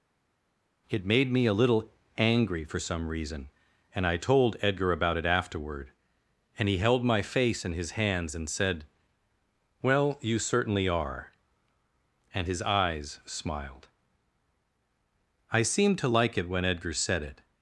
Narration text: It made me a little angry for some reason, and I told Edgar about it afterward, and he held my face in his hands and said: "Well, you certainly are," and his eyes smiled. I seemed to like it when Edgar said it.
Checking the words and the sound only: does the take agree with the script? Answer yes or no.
yes